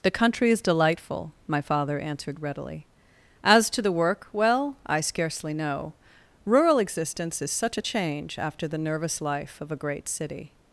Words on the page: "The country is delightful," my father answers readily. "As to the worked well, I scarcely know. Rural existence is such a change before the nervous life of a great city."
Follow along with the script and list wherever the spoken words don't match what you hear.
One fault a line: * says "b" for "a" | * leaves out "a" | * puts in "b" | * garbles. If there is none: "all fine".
* says "answered" for "answers"
* says "work" for "worked"
* says "after" for "before"